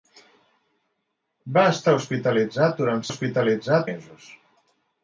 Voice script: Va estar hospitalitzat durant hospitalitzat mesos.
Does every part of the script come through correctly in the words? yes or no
yes